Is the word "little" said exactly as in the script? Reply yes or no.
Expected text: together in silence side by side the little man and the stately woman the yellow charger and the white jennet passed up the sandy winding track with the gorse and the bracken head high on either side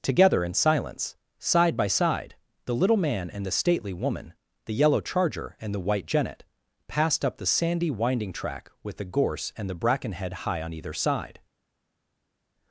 yes